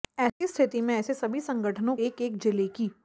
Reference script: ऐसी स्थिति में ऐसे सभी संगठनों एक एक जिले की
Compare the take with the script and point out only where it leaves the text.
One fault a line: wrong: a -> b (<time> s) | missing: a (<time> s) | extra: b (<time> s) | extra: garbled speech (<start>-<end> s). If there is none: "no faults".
no faults